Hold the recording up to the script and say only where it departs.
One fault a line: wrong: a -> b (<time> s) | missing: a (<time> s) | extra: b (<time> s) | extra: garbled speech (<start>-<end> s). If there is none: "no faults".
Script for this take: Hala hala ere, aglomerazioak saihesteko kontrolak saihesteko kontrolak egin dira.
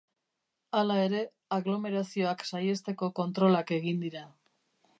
missing: hala (0.9 s)
missing: saihesteko kontrolak (3.8 s)